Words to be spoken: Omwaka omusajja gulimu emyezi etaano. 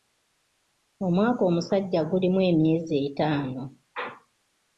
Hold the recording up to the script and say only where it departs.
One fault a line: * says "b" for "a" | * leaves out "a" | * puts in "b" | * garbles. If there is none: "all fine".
all fine